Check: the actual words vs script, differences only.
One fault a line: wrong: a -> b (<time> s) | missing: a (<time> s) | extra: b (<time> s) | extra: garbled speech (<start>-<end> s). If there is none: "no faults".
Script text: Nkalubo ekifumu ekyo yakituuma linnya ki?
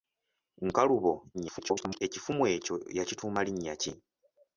extra: garbled speech (1.3-2.0 s)